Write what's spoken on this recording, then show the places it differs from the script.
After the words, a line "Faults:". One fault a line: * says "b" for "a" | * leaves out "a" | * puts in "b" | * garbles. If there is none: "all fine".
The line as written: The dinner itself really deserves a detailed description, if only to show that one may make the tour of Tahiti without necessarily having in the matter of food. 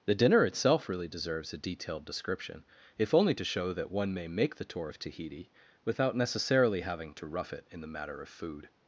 The dinner itself really deserves a detailed description, if only to show that one may make the tour of Tahiti without necessarily having to rough it in the matter of food.
Faults:
* puts in "to rough it"